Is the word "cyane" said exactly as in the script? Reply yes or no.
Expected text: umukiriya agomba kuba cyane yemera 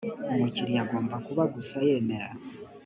no